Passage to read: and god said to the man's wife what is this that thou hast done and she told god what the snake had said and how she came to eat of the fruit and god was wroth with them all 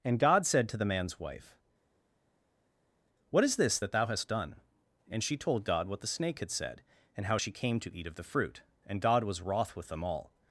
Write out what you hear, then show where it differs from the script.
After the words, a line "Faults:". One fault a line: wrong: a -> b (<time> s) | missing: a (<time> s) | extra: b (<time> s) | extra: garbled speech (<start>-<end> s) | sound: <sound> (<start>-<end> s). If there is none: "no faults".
and god said to the man's wife what is this that thou hast done and she told god what the snake had said and how she came to eat of the fruit and god was wroth with them all
Faults:
no faults